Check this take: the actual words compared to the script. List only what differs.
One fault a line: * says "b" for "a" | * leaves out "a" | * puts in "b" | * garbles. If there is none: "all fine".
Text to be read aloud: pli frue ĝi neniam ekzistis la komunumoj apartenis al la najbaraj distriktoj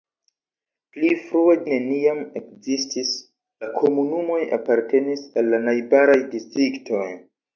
* leaves out "ĝi"